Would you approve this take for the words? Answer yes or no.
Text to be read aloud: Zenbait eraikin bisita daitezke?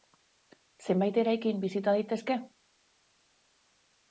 yes